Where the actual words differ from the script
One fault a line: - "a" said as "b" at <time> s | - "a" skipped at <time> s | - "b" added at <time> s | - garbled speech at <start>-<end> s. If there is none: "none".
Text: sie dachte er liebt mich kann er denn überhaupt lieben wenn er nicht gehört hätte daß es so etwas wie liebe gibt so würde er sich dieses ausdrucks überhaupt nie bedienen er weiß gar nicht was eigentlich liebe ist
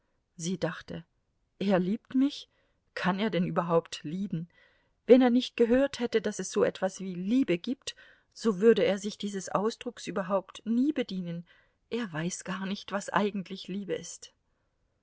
none